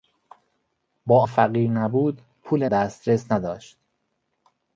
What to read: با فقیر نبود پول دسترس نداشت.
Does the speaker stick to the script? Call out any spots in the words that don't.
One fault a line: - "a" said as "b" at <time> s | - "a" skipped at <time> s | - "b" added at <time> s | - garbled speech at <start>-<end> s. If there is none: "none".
none